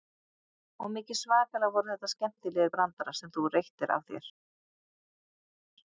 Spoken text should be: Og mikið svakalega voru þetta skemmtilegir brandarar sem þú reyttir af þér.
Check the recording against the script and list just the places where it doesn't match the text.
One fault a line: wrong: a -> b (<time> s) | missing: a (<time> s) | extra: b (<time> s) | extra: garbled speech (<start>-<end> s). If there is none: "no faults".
no faults